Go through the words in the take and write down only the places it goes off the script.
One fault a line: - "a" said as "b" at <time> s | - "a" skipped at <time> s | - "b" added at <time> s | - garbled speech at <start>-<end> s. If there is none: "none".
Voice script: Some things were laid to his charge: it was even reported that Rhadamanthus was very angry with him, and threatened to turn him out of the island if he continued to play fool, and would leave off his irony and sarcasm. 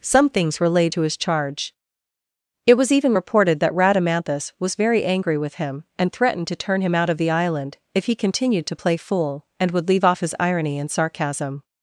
none